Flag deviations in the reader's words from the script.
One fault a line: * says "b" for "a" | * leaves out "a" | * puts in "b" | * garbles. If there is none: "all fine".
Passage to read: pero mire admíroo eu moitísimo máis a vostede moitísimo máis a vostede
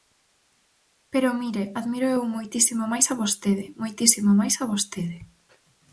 all fine